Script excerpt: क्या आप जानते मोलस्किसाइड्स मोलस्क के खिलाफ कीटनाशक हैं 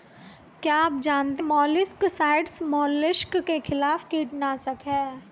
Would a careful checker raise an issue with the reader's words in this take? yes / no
no